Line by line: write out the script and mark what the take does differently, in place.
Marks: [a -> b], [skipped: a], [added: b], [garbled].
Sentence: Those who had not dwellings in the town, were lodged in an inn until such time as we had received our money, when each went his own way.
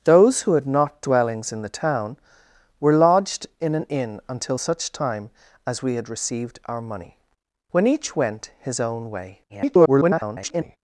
Those who had not dwellings in the town, were lodged in an inn until such time as we had received our money, when each went his own way. [garbled]